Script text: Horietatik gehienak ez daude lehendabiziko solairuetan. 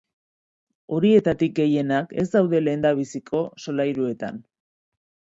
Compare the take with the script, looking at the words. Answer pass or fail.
pass